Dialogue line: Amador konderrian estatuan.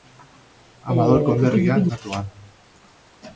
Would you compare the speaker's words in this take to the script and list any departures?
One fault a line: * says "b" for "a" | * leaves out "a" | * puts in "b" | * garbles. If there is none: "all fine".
all fine